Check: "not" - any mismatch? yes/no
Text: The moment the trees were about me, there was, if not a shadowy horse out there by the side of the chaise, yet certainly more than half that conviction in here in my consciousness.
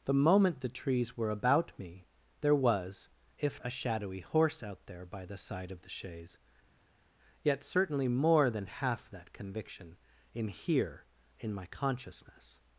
yes